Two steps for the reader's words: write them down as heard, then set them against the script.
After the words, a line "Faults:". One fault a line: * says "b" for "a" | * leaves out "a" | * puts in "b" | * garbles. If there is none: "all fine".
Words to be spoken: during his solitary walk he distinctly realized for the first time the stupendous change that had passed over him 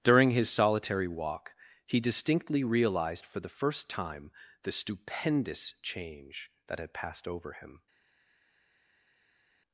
during his solitary walk he distinctly realized for the first time the stupendous change that had passed over him
Faults:
all fine